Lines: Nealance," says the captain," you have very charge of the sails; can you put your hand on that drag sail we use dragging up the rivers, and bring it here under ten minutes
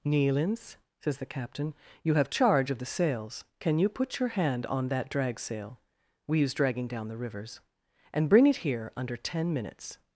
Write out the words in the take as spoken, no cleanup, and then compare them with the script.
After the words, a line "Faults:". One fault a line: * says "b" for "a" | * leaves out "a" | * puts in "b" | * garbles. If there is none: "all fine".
Nealance," says the captain," you have charge of the sails; can you put your hand on that drag sail we use dragging down the rivers, and bring it here under ten minutes
Faults:
* leaves out "very"
* says "down" for "up"